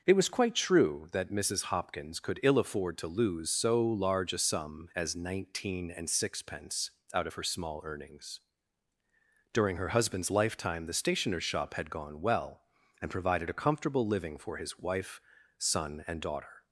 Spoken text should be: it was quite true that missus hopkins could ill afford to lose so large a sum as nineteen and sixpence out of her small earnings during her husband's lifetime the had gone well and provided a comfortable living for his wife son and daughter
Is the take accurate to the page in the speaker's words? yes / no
no